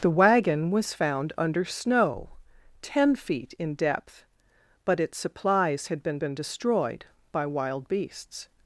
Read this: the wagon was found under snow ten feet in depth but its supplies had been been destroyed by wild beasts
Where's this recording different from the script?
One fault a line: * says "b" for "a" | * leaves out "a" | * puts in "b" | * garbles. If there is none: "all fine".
all fine